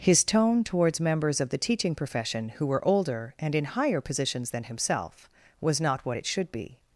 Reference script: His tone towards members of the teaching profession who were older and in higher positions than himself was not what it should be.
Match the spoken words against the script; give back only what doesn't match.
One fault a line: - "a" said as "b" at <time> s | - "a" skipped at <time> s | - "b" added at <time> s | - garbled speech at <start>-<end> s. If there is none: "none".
none